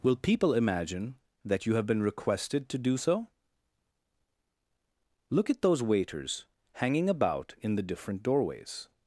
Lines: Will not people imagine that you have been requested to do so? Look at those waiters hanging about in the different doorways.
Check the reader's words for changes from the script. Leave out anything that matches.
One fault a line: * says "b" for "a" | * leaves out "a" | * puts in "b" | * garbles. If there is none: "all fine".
* leaves out "not"